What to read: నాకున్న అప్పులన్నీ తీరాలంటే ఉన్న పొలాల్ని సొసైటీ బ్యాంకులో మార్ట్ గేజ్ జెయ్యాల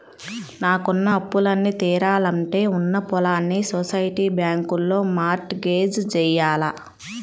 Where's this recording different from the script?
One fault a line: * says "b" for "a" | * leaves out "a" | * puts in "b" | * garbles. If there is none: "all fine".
all fine